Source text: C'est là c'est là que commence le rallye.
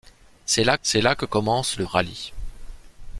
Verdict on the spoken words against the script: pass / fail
pass